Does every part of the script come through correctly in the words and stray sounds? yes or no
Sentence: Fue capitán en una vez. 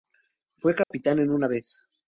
no